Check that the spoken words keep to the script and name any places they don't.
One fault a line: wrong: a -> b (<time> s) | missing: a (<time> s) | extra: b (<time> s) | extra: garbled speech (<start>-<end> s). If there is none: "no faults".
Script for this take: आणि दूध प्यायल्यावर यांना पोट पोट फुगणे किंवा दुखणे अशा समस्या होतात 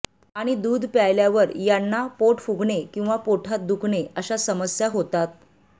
missing: पोट (2.4 s)
extra: पोटात (3.2 s)